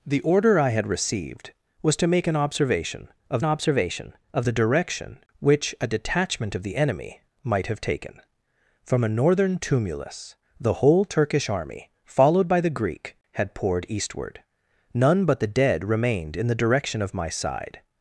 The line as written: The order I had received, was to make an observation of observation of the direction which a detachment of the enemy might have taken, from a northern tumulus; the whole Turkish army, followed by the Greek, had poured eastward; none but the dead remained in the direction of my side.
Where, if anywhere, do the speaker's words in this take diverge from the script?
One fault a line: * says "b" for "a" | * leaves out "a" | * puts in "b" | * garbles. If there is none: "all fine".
all fine